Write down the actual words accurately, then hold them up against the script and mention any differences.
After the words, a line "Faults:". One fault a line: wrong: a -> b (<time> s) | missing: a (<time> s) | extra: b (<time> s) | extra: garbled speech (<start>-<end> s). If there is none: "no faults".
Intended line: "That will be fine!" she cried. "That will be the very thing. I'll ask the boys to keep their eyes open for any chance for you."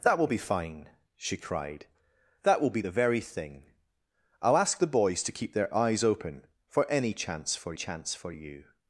"That will be fine!" she cried. "That will be the very thing. I'll ask the boys to keep their eyes open for any chance for chance for you."
Faults:
extra: chance for (7.7 s)